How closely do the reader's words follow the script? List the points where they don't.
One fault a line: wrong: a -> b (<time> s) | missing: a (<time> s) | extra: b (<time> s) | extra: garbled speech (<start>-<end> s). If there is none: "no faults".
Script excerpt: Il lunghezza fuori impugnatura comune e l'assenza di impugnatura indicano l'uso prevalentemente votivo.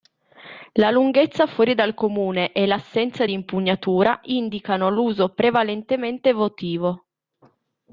wrong: Il -> La (0.7 s)
wrong: impugnatura -> dal (1.8 s)